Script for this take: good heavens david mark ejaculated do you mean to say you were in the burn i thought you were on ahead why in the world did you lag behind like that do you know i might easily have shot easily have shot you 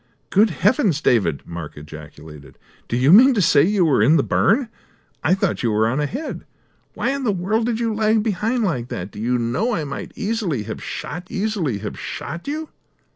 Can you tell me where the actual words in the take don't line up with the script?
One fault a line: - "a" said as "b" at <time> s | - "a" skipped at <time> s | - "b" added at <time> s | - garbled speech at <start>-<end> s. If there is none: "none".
none